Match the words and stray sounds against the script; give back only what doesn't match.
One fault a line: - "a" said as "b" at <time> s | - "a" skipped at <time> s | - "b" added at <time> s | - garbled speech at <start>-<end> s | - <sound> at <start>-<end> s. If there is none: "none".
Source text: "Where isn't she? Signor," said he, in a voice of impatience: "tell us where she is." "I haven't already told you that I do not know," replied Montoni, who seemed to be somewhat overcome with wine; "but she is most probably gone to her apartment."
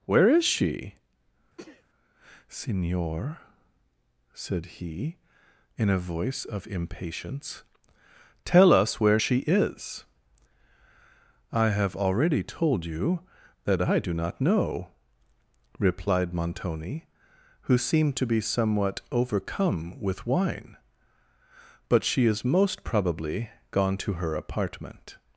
- "isn't" said as "is" at 0.3 s
- sneeze at 1.6-1.8 s
- "haven't" said as "have" at 11.7 s